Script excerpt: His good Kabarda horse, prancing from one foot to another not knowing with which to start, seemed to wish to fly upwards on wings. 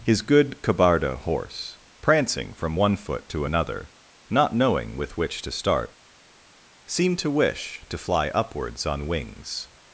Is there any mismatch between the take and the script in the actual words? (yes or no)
no